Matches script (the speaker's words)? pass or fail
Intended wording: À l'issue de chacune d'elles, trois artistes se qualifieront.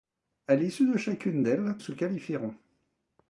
fail